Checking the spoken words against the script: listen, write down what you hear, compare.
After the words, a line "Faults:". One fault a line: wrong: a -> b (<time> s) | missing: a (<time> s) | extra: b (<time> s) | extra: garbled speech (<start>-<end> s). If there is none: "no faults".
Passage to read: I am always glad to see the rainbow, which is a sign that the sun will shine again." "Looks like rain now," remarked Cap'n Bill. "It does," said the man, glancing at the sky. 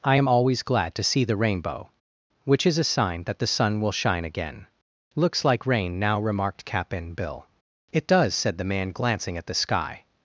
I am always glad to see the rainbow, which is a sign that the sun will shine again." "Looks like rain now," remarked Cap'n Bill. "It does," said the man, glancing at the sky.
Faults:
no faults